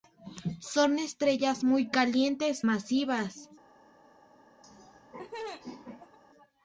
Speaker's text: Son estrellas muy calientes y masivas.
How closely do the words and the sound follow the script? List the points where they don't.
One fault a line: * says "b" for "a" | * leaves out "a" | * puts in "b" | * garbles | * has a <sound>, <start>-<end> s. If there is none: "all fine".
* leaves out "y"
* has a laugh, 4.6-6.2 s